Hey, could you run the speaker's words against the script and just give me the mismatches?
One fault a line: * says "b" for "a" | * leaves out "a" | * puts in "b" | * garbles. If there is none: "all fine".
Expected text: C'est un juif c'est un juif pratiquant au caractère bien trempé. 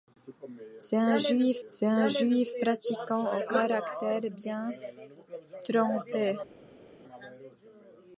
all fine